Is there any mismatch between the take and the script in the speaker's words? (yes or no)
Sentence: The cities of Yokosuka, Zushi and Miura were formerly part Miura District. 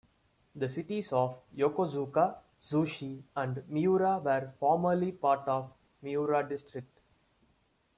yes